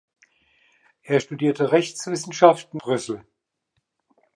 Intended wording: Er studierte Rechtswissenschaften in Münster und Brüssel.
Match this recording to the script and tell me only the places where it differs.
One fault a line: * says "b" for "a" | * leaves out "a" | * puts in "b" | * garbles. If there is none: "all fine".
* leaves out "in Münster und"